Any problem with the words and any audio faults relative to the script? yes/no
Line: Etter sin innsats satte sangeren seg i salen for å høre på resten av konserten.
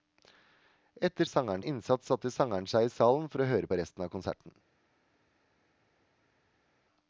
yes